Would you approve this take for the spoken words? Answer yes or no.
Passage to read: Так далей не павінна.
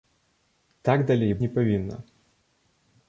yes